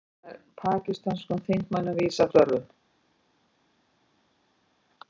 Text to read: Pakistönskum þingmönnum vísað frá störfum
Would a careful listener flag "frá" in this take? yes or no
yes